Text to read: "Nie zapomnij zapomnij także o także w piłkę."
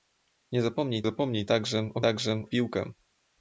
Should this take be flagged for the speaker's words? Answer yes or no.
no